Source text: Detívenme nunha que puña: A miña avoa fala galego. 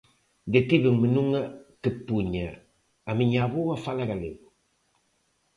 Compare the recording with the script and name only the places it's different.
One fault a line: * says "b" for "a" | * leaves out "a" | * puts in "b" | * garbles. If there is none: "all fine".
all fine